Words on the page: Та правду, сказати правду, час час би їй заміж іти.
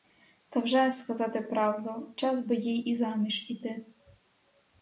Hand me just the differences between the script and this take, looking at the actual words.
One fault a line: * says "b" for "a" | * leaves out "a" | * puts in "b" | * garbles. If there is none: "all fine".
* says "вже" for "правду"
* leaves out "час"
* puts in "і"